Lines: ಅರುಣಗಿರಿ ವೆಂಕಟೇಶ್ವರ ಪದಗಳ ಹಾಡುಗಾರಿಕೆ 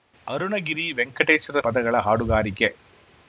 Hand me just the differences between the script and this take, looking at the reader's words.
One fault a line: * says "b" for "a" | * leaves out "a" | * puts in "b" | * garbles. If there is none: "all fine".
all fine